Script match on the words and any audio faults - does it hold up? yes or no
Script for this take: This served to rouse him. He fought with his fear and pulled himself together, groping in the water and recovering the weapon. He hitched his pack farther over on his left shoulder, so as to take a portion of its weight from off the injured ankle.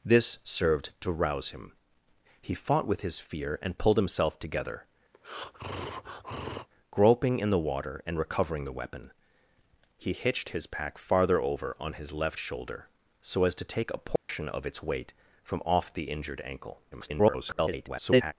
no